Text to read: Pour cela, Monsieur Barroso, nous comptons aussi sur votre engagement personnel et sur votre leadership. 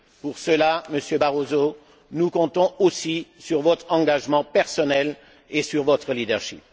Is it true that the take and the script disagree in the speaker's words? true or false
false